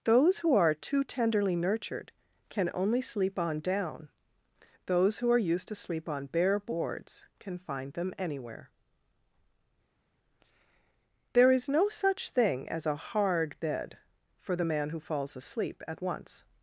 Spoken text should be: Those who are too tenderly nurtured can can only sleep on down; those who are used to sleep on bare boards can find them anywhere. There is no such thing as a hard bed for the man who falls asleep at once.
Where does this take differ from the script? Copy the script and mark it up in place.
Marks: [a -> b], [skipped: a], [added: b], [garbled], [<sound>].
Those who are too tenderly nurtured can [skipped: can] only sleep on down; those who are used to sleep on bare boards can find them anywhere. There is no such thing as a hard bed for the man who falls asleep at once.